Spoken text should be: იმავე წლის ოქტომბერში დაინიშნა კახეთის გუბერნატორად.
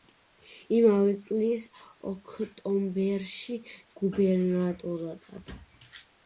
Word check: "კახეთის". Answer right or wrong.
wrong